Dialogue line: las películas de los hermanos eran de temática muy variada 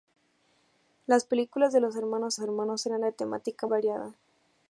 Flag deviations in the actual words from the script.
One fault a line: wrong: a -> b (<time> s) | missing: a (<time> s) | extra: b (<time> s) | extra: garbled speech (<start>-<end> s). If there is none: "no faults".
extra: hermanos (2.4 s)
missing: muy (3.7 s)